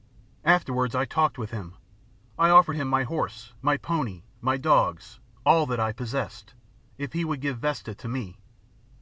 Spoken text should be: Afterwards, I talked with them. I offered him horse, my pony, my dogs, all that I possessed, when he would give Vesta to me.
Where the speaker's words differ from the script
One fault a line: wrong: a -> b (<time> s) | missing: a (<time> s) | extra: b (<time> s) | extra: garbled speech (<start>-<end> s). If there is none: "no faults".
wrong: them -> him (1.5 s)
extra: my (2.9 s)
wrong: when -> if (7.0 s)